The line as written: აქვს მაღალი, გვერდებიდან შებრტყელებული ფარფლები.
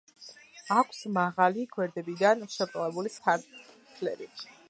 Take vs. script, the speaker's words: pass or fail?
pass